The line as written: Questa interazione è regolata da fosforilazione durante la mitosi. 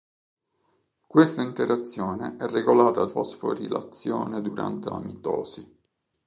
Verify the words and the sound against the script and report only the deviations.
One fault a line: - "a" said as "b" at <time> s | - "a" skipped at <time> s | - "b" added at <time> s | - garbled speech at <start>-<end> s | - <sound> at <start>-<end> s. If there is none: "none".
- "da" skipped at 3.0 s